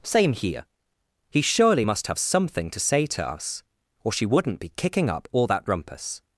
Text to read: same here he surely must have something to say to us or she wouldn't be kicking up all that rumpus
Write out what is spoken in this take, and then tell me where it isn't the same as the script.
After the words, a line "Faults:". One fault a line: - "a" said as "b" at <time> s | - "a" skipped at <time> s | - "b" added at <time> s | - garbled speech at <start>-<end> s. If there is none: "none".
same here he surely must have something to say to us or she wouldn't be kicking up all that rumpus
Faults:
none